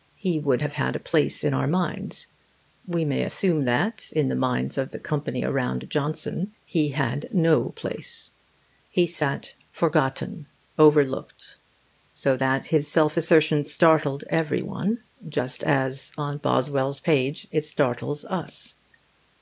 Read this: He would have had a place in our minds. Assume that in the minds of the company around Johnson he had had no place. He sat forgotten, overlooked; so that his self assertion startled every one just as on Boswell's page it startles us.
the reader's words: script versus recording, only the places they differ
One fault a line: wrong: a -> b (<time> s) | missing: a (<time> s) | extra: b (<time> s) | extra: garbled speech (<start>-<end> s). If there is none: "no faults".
extra: We may (2.9 s)
missing: had (7.3 s)